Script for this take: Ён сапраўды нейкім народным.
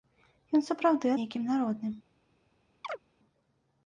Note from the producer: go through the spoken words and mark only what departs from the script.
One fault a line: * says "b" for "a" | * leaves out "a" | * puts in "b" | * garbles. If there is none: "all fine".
all fine